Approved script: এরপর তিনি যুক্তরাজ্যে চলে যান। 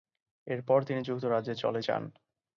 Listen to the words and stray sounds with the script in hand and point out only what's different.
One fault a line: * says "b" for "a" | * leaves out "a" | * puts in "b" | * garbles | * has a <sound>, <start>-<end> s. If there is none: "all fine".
all fine